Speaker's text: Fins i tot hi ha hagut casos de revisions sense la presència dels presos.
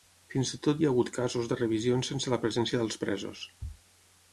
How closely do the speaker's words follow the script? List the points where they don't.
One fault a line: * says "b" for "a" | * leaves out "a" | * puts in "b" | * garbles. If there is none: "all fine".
all fine